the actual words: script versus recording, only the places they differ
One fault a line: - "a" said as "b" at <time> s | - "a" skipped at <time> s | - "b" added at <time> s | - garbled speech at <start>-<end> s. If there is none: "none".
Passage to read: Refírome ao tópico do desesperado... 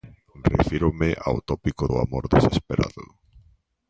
- "amor" added at 2.0 s